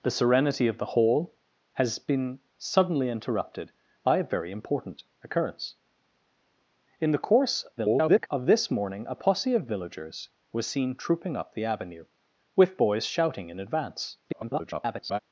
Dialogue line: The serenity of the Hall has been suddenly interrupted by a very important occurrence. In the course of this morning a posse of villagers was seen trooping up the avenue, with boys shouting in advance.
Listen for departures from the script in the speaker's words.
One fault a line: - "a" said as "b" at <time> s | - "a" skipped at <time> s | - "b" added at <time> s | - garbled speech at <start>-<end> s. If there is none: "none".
- garbled speech at 7.8-8.3 s
- garbled speech at 14.2-15.2 s